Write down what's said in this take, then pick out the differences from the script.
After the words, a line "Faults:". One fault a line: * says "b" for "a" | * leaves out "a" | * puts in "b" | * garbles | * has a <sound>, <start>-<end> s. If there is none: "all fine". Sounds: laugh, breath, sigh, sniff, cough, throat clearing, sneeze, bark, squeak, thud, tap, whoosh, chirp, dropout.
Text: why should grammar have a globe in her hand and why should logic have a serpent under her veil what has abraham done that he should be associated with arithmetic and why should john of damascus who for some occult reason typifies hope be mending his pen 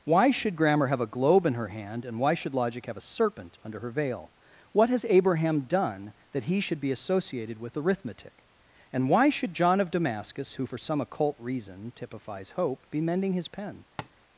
why should grammar have a globe in her hand and why should logic have a serpent under her veil what has abraham done that he should be associated with arithmetic and why should john of damascus who for some occult reason typifies hope be mending his pen
Faults:
* has a tap, 14.0-14.1 s